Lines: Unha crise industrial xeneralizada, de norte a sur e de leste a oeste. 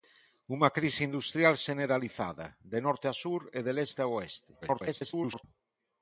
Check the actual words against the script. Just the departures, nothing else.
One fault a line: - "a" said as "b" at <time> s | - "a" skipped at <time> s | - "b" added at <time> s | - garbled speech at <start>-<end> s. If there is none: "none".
- garbled speech at 4.6-5.4 s